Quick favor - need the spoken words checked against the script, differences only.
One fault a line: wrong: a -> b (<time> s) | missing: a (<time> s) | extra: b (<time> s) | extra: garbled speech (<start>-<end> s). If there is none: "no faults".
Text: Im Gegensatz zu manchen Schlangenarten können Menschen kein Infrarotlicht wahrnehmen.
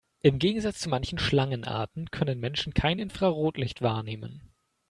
no faults